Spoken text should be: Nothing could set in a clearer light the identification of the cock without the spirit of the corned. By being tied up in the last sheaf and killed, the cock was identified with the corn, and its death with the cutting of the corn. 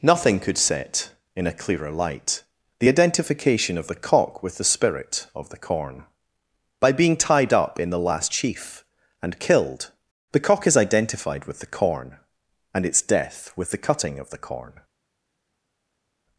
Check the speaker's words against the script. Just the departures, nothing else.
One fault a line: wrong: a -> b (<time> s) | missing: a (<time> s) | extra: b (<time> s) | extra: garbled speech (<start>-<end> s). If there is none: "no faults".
wrong: without -> with (4.4 s)
wrong: corned -> corn (5.6 s)
wrong: was -> is (10.6 s)